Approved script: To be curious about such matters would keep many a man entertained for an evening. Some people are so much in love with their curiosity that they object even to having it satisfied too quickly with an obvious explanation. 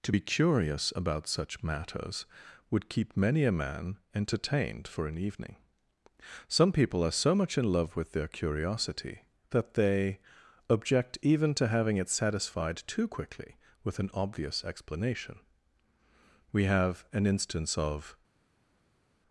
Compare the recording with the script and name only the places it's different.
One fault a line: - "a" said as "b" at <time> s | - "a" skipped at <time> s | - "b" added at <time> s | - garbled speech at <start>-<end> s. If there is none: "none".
- "We have an instance of" added at 16.5 s